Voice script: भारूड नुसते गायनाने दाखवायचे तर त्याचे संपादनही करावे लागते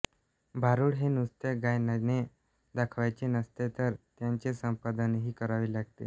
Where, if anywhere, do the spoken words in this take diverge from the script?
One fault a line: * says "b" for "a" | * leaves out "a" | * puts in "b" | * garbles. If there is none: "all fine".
* puts in "हे"
* puts in "नसते"